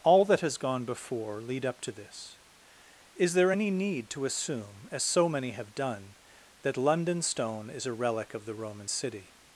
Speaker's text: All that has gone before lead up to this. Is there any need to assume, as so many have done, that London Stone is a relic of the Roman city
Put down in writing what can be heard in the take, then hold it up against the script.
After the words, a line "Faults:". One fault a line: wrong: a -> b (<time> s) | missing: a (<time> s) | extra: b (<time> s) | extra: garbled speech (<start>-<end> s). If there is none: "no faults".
All that has gone before lead up to this. Is there any need to assume, as so many have done, that London Stone is a relic of the Roman city
Faults:
no faults